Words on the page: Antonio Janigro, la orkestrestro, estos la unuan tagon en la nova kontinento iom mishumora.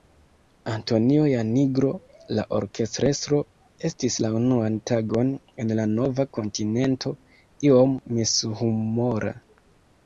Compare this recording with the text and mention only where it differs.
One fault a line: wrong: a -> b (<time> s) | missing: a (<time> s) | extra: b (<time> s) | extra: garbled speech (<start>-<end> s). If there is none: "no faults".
wrong: estos -> estis (3.9 s)